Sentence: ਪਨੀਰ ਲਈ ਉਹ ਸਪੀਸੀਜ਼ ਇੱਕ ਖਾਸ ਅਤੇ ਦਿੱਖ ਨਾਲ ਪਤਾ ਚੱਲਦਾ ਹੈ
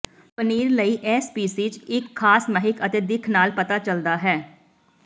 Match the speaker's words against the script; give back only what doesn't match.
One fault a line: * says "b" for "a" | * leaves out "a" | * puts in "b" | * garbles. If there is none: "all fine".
* says "ਇਹ" for "ਉਹ"
* puts in "ਮਹਿਕ"